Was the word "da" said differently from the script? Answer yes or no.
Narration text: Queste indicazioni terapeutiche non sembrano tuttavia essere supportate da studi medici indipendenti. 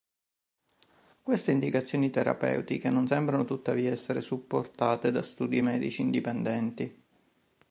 no